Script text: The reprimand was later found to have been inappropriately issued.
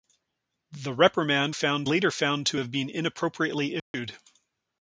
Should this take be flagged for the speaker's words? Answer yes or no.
yes